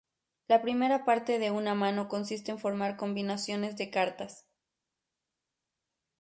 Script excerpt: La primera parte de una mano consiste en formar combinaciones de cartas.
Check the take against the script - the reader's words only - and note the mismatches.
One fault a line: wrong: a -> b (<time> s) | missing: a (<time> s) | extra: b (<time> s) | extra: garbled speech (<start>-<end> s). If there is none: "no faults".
no faults